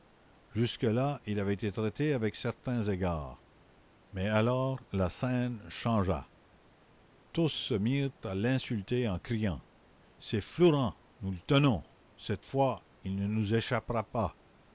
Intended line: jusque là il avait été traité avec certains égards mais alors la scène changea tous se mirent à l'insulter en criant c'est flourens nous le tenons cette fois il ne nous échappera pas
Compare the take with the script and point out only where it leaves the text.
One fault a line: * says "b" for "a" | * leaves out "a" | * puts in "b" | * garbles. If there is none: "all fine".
all fine